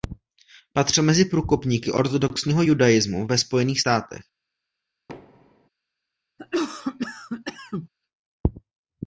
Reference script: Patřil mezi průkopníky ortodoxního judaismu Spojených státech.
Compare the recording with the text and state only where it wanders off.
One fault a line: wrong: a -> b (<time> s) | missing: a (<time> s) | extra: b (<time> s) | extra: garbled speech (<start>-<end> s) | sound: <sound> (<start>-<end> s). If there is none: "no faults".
extra: ve (3.3 s)
sound: thud (5.1-5.7 s)
sound: cough (6.4-7.9 s)